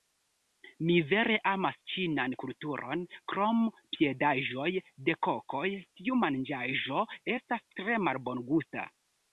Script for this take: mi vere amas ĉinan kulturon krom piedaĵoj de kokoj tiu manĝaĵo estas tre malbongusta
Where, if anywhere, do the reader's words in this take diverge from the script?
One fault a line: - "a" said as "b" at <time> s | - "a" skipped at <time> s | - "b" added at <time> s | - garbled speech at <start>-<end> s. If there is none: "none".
none